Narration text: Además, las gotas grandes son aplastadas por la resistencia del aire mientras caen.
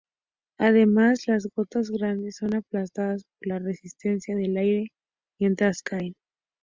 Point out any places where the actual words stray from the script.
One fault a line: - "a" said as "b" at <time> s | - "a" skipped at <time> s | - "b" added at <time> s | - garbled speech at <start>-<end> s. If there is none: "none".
none